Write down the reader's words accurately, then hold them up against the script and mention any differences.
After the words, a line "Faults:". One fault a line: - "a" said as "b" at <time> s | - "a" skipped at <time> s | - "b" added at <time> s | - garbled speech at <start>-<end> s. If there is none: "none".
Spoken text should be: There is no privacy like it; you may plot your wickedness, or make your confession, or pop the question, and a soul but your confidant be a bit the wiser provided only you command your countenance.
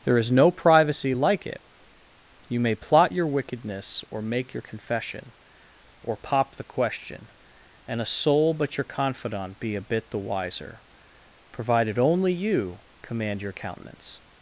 There is no privacy like it; you may plot your wickedness, or make your confession, or pop the question, and a soul but your confidant be a bit the wiser provided only you command your countenance.
Faults:
none